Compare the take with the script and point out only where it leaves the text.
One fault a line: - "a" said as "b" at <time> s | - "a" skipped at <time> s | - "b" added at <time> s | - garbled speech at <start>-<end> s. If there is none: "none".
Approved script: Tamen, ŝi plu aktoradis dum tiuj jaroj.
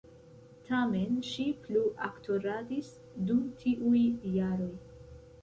none